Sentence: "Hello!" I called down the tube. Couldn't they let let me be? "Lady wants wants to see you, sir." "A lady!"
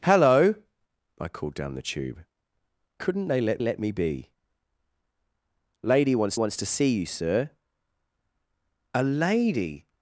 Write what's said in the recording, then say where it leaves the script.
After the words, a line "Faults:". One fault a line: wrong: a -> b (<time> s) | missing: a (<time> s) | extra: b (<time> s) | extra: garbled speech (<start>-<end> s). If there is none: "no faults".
"Hello!" I called down the tube. Couldn't they let let me be? "Lady wants wants to see you, sir." "A lady!"
Faults:
no faults